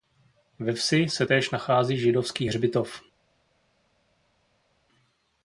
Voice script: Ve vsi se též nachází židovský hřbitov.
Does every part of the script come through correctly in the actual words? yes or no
yes